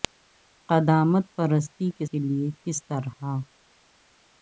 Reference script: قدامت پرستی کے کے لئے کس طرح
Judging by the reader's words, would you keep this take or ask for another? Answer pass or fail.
pass